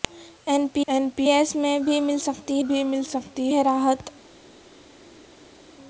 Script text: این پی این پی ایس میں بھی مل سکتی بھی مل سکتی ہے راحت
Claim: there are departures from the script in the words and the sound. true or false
false